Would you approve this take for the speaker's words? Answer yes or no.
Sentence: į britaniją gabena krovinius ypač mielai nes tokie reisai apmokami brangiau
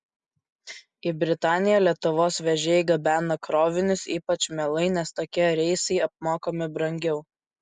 no